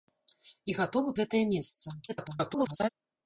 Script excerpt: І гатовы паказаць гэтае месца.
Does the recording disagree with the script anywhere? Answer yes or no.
yes